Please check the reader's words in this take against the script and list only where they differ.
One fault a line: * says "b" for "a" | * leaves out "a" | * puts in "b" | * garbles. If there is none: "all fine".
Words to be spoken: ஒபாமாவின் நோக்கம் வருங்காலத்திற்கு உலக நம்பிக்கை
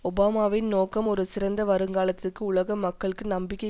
* puts in "ஒரு சிறந்த"
* puts in "மக்களுக்கு"